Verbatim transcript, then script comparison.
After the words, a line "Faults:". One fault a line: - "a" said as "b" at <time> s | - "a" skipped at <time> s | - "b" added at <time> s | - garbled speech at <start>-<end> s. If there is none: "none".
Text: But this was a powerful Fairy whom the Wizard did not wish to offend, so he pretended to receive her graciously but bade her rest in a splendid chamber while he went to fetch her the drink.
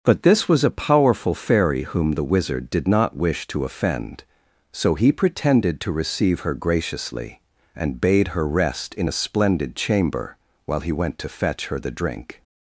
But this was a powerful Fairy whom the Wizard did not wish to offend, so he pretended to receive her graciously and bade her rest in a splendid chamber while he went to fetch her the drink.
Faults:
- "but" said as "and" at 7.8 s